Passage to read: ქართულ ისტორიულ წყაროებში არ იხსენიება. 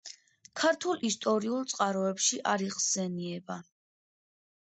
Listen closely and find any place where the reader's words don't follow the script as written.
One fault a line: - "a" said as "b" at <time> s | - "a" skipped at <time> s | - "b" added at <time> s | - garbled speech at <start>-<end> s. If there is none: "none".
none